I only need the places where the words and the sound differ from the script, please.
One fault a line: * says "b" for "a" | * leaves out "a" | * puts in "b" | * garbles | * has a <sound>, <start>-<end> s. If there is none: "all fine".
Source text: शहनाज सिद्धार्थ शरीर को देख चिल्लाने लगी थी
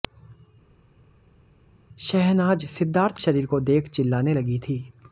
all fine